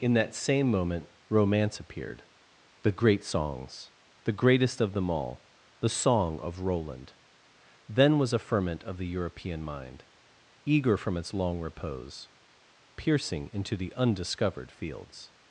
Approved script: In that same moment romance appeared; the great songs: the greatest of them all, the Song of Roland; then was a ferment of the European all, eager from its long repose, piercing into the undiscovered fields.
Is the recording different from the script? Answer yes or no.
yes